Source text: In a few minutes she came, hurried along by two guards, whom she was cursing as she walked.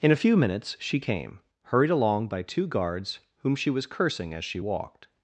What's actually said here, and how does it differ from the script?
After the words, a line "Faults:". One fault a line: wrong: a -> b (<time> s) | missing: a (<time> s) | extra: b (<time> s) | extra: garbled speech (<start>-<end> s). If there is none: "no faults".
In a few minutes she came, hurried along by two guards, whom she was cursing as she walked.
Faults:
no faults